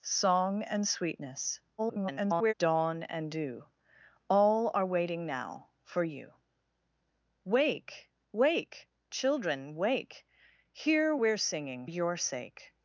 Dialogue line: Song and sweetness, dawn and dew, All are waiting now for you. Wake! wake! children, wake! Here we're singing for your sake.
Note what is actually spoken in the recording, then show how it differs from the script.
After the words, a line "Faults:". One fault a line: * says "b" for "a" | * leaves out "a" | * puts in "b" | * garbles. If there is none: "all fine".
Song and sweetness, [garbled] dawn and dew, All are waiting now for you. Wake! wake! children, wake! Here we're singing your sake.
Faults:
* garbles
* leaves out "for"